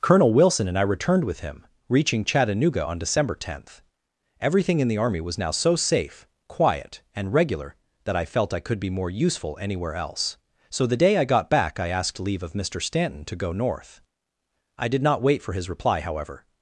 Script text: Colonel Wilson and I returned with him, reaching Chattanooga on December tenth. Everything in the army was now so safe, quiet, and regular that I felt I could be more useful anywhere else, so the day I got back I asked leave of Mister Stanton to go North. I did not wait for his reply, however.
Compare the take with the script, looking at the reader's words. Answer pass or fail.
pass